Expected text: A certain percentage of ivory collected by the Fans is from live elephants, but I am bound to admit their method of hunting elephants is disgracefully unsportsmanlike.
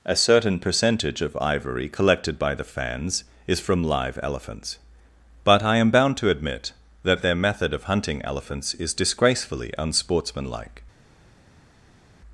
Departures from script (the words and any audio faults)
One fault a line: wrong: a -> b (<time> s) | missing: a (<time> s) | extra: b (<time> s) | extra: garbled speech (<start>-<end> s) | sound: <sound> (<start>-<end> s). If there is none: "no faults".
extra: that (7.0 s)